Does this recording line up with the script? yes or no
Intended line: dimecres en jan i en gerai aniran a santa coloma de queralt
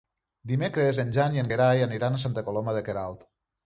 yes